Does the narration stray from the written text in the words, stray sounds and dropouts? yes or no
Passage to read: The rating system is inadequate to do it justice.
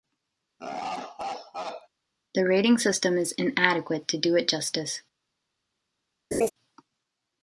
yes